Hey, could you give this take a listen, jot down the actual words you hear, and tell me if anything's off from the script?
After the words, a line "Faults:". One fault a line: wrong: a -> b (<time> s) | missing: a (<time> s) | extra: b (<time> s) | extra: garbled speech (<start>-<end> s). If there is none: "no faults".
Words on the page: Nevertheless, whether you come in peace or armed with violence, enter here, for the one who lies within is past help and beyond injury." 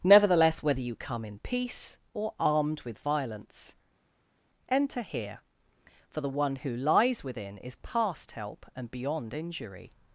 Nevertheless, whether you come in peace or armed with violence, enter here, for the one who lies within is past help and beyond injury."
Faults:
no faults